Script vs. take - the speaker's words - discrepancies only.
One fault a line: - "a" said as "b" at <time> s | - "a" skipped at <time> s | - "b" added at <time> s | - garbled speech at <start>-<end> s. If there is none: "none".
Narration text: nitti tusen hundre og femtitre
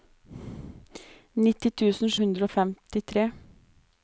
none